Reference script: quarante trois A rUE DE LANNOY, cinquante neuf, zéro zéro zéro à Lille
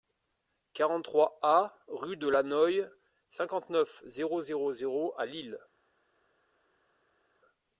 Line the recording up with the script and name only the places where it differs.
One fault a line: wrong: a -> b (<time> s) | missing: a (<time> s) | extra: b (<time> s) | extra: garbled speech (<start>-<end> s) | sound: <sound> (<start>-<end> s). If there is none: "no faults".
no faults